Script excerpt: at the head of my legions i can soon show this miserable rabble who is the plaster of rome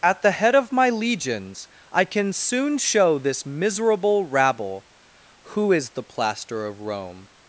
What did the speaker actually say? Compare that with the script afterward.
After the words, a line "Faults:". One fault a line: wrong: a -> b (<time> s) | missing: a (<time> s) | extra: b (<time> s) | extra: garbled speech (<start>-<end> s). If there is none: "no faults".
at the head of my legions i can soon show this miserable rabble who is the plaster of rome
Faults:
no faults